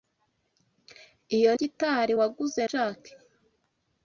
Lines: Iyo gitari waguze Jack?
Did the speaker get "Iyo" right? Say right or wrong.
right